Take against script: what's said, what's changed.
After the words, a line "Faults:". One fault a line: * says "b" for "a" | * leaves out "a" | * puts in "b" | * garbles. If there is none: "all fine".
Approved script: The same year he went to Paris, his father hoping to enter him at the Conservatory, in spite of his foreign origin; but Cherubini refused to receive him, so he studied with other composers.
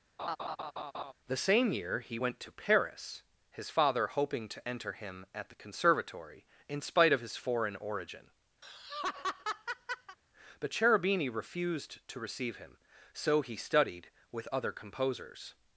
The same year he went to Paris, his father hoping to enter him at the Conservatory, in spite of his foreign origin; but Cherubini refused to receive him, so he studied with other composers.
Faults:
all fine